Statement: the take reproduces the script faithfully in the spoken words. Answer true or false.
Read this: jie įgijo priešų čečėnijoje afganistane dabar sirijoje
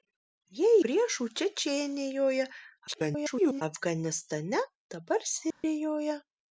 false